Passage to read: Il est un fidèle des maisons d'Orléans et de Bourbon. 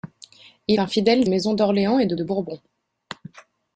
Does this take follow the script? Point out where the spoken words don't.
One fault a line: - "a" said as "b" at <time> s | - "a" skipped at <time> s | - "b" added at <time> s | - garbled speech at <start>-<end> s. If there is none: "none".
- "est" skipped at 0.8 s
- "des" skipped at 1.2 s
- "de" added at 2.1 s